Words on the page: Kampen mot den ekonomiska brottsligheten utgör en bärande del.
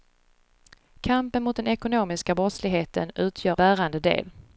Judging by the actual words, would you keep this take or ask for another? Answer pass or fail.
fail